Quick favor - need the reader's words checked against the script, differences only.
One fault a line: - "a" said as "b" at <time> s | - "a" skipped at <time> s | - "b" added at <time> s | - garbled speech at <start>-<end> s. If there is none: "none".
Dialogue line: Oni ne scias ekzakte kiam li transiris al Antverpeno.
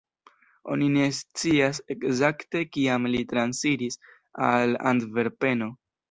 none